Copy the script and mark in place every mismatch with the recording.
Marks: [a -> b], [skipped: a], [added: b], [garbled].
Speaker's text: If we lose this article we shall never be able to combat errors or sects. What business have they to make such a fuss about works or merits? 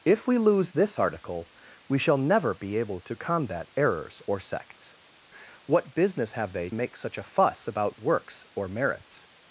If we lose this article we shall never be able to combat errors or sects. What business have they [skipped: to] make such a fuss about works or merits?